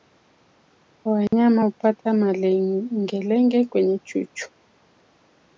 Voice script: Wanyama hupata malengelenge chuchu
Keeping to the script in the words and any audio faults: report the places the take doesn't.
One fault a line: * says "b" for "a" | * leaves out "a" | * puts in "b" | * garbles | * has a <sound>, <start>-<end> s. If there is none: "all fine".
* has a dropout, 1.3-1.3 s
* puts in "kwenye"